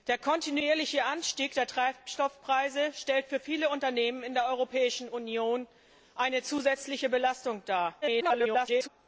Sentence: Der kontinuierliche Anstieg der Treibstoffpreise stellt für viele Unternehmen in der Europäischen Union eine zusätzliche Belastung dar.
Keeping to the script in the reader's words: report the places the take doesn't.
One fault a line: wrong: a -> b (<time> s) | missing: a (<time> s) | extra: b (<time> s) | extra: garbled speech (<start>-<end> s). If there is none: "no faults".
extra: garbled speech (8.0-8.9 s)